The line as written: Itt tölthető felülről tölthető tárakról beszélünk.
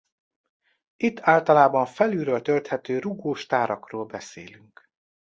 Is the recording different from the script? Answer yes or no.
yes